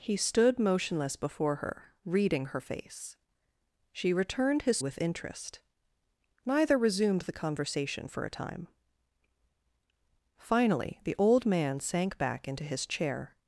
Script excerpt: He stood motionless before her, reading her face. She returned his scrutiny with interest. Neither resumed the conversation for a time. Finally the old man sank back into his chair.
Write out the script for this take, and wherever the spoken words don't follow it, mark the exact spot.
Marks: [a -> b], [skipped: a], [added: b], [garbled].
He stood motionless before her, reading her face. She returned his [skipped: scrutiny] with interest. Neither resumed the conversation for a time. Finally the old man sank back into his chair.